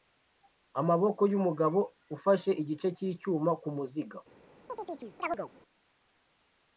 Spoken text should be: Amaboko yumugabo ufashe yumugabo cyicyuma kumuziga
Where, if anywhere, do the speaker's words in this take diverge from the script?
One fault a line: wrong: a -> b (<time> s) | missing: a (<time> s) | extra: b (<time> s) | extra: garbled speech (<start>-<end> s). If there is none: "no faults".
wrong: yumugabo -> igice (2.6 s)